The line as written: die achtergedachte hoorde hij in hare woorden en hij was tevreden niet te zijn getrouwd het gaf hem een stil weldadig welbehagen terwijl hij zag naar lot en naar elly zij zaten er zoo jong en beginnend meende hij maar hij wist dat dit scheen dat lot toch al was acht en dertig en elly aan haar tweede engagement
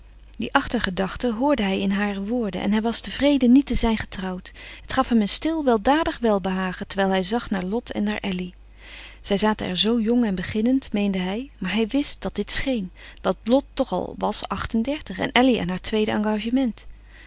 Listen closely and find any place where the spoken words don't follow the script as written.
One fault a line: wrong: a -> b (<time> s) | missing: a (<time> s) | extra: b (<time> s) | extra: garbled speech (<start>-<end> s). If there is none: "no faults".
no faults